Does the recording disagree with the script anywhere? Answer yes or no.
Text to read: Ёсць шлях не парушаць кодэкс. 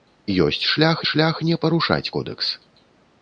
yes